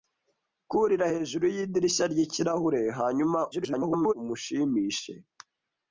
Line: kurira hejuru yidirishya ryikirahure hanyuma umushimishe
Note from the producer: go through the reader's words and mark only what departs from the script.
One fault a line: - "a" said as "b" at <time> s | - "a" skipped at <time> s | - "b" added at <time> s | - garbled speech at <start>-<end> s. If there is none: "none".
- garbled speech at 3.5-4.1 s